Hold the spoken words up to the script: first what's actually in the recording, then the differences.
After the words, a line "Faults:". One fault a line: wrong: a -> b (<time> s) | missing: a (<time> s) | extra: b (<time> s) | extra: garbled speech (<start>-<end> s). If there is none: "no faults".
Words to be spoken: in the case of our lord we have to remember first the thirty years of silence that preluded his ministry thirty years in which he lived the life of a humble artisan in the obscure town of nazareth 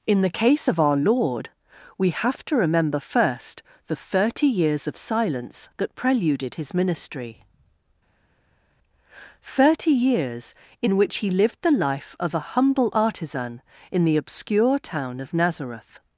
in the case of our lord we have to remember first the thirty years of silence that preluded his ministry thirty years in which he lived the life of a humble artisan in the obscure town of nazareth
Faults:
no faults